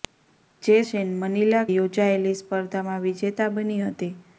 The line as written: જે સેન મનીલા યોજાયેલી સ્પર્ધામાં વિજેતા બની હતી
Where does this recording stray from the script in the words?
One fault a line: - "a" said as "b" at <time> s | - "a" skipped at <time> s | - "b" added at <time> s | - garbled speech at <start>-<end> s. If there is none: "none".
none